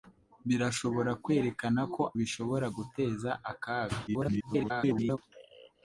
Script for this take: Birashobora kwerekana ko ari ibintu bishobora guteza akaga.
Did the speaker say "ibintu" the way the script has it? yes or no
no